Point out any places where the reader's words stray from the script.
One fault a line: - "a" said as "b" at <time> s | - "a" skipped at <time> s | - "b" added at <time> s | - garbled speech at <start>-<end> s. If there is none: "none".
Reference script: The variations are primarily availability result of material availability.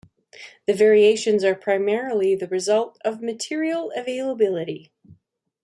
- "availability" said as "the" at 2.3 s